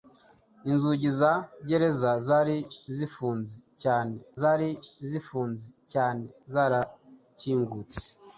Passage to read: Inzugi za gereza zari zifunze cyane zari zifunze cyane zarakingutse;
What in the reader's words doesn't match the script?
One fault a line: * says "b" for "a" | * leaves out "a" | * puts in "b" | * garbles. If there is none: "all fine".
all fine